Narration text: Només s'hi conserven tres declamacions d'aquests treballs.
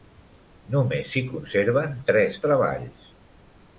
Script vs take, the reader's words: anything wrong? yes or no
yes